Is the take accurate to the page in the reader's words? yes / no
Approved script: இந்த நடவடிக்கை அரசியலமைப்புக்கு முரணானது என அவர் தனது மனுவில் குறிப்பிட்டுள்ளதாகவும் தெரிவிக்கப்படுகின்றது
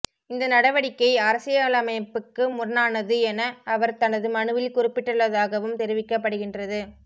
yes